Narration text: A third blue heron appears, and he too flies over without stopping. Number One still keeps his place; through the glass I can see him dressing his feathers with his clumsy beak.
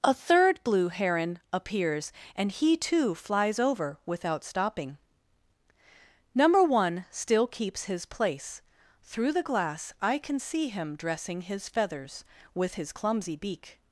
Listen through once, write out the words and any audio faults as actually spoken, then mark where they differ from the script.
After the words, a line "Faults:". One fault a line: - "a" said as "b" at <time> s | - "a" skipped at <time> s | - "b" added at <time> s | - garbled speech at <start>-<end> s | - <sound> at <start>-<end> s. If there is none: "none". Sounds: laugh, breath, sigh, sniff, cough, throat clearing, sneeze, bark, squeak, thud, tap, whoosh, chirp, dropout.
A third blue heron appears, and he too flies over without stopping. Number One still keeps his place; through the glass I can see him dressing his feathers with his clumsy beak.
Faults:
none